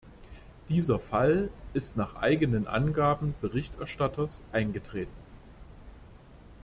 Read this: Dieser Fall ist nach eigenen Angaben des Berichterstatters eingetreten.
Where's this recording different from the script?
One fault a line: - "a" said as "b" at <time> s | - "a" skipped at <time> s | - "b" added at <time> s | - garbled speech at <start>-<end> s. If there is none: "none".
- "des" skipped at 3.4 s